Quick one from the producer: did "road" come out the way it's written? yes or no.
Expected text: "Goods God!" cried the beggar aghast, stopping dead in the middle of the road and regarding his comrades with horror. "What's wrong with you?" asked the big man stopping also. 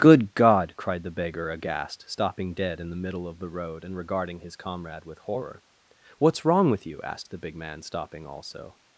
yes